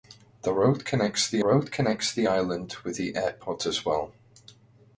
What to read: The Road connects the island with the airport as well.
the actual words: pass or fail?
fail